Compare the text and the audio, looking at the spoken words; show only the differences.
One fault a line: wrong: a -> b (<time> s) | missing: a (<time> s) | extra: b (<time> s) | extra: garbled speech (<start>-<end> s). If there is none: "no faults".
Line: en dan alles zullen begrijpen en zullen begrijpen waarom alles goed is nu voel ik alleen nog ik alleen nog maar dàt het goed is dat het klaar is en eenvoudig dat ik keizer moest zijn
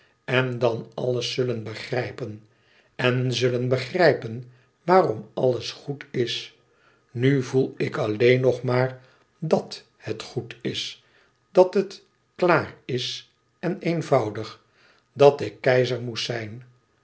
missing: ik alleen nog (8.6 s)